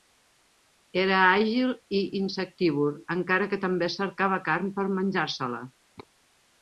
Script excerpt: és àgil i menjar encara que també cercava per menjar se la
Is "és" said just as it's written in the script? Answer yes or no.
no